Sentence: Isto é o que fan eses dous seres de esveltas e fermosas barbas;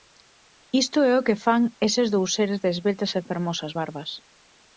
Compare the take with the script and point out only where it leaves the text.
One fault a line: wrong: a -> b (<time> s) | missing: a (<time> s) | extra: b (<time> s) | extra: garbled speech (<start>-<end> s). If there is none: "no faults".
no faults